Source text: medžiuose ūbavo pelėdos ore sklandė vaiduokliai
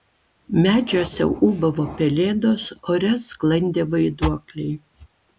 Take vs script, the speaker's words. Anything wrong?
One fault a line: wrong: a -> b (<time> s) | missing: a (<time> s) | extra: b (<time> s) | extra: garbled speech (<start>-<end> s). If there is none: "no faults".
no faults